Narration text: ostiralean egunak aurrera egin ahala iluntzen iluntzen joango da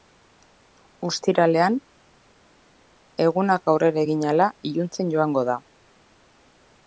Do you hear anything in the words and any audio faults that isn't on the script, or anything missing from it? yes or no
yes